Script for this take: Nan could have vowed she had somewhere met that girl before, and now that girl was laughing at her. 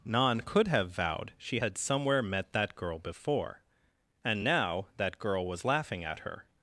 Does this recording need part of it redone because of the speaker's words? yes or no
no